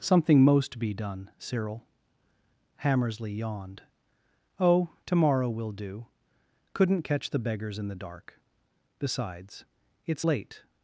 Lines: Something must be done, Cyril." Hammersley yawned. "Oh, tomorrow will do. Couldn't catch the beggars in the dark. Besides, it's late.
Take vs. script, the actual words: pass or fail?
fail